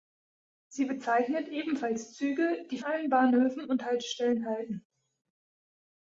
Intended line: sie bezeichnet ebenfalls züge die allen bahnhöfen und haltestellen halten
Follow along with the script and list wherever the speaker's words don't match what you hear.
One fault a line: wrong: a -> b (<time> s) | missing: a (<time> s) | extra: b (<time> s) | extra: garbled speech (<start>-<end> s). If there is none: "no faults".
no faults